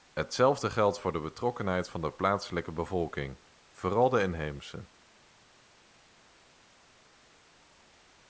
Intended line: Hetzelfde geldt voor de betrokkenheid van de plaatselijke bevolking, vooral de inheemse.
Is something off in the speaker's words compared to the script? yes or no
no